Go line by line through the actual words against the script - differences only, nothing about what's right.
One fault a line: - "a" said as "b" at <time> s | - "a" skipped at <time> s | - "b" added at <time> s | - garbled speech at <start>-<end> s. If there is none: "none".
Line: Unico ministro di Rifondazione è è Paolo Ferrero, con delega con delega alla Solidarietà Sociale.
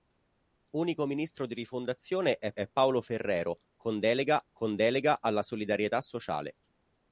none